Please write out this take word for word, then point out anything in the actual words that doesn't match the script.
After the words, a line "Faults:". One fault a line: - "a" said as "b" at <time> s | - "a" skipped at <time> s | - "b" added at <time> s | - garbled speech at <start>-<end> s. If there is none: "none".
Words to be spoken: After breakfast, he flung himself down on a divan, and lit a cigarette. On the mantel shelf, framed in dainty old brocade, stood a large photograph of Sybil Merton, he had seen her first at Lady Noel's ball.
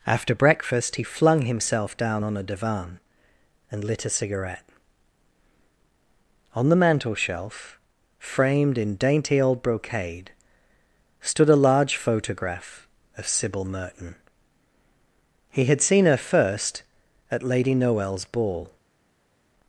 After breakfast, he flung himself down on a divan, and lit a cigarette. On the mantel shelf, framed in dainty old brocade, stood a large photograph of Sybil Merton, he had seen her first at Lady Noel's ball.
Faults:
none